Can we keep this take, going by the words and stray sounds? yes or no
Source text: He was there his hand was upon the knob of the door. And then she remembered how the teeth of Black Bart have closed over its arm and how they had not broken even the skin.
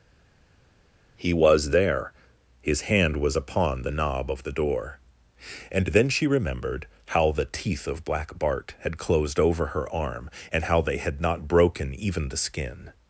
no